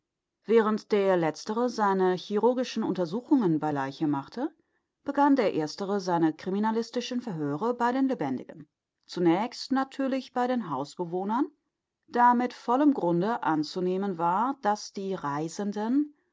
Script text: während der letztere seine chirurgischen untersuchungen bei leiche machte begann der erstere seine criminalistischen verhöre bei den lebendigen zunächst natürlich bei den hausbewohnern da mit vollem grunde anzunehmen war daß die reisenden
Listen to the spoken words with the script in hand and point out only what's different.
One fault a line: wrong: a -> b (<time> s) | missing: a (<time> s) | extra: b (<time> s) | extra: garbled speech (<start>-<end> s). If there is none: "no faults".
no faults